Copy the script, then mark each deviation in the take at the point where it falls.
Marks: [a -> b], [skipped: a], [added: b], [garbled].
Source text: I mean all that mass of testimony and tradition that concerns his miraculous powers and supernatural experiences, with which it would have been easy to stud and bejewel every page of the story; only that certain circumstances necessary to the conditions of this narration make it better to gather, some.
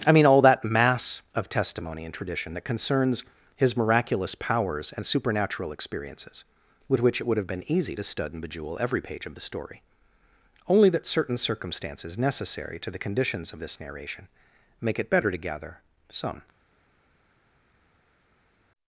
I mean all that mass of testimony and tradition that concerns his miraculous powers and supernatural experiences, with which it would have been easy to stud and bejewel every page of the story; only that certain circumstances necessary to the conditions of this narration make it better to gather, some.